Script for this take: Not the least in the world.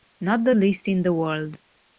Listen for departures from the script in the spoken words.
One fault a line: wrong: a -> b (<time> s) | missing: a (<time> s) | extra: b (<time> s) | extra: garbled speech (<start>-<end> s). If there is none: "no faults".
no faults